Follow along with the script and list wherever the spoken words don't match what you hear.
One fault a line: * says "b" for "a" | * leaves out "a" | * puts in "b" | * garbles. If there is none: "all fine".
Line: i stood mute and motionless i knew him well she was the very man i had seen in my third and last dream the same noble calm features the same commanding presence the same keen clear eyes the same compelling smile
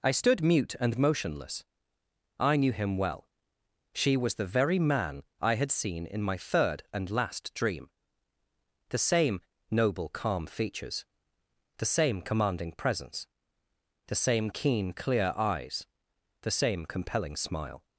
all fine